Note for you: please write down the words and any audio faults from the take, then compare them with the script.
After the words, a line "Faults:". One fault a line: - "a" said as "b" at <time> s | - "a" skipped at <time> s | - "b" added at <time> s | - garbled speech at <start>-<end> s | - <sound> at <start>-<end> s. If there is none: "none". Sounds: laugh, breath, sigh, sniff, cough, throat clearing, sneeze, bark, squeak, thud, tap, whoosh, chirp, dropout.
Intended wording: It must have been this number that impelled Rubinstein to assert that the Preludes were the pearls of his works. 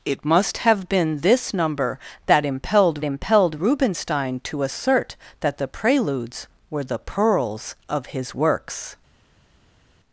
It must have been this number that impelled impelled Rubinstein to assert that the Preludes were the pearls of his works.
Faults:
- "impelled" added at 3.0 s